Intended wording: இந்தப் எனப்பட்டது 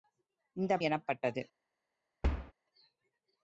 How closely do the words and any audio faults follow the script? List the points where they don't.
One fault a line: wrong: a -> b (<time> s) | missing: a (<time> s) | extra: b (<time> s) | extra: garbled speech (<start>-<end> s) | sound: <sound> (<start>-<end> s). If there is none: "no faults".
sound: thud (2.2-2.5 s)